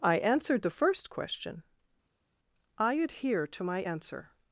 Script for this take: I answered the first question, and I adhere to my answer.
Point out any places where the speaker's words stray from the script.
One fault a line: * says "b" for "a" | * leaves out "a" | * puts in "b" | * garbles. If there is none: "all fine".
* leaves out "and"